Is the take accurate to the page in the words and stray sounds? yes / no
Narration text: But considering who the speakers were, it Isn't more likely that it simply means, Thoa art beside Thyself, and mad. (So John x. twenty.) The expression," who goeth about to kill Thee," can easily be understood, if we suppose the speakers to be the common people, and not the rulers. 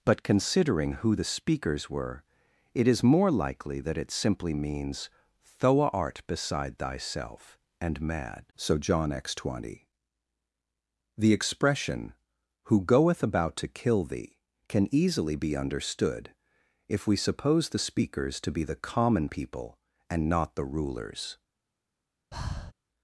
no